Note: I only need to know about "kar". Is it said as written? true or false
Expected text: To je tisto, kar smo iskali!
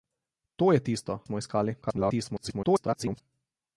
false